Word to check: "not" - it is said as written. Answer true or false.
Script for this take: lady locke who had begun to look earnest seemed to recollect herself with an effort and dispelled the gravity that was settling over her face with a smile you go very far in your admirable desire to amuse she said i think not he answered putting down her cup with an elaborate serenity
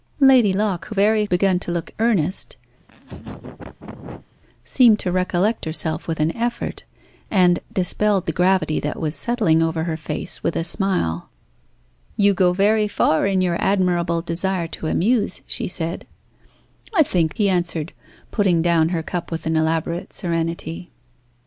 false